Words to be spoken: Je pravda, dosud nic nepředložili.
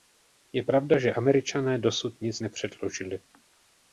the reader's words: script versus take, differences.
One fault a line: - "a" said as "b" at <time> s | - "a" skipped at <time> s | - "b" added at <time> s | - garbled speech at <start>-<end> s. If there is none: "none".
- "že Američané" added at 1.0 s